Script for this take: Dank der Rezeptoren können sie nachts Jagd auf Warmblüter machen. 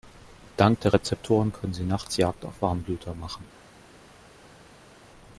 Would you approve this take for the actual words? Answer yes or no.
yes